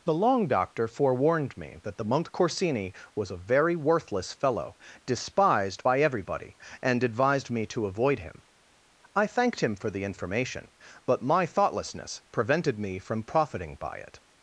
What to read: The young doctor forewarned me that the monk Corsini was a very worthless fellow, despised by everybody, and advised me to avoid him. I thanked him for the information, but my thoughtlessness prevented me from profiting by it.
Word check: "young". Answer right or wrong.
wrong